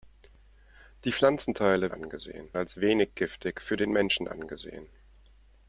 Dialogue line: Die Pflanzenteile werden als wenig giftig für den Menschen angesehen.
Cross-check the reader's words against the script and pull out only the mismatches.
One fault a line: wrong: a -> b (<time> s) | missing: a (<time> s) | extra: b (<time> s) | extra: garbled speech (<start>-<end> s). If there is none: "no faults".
wrong: werden -> angesehen (1.9 s)